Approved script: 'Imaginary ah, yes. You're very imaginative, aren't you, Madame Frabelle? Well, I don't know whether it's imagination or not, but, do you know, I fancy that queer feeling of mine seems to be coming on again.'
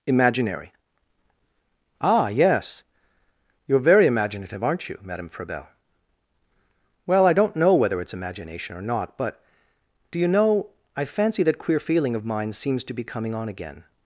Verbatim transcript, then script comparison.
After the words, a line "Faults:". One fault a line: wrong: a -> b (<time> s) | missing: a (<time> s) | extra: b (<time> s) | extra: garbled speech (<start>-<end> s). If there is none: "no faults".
'Imaginary ah, yes. You're very imaginative, aren't you, Madame Frabelle? Well, I don't know whether it's imagination or not, but, do you know, I fancy that queer feeling of mine seems to be coming on again.'
Faults:
no faults